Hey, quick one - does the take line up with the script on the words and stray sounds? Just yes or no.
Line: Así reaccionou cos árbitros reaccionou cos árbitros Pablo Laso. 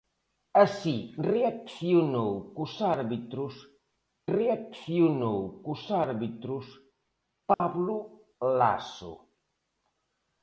no